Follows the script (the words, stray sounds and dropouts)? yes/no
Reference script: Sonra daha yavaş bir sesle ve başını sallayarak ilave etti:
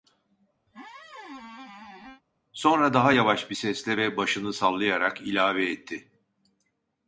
no